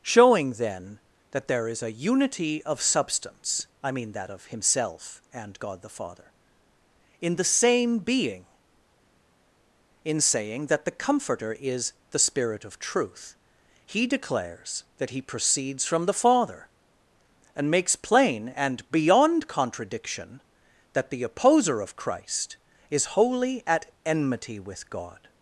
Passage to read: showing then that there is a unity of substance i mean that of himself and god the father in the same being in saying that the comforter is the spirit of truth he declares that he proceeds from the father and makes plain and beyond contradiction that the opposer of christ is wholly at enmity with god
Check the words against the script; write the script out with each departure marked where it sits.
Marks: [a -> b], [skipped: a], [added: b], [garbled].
showing then that there is a unity of substance i mean that of himself and god the father in the same being in saying that the comforter is the spirit of truth he declares that he proceeds from the father and makes plain and beyond contradiction that the opposer of christ is wholly at enmity with god